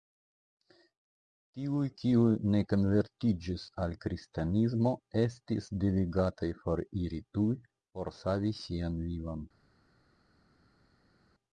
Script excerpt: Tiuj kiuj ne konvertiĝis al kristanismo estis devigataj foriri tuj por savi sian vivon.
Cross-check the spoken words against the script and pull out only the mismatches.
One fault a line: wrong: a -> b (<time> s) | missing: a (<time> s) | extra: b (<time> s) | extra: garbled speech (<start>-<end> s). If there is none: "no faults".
no faults